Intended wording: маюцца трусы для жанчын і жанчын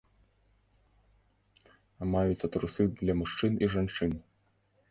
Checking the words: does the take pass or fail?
fail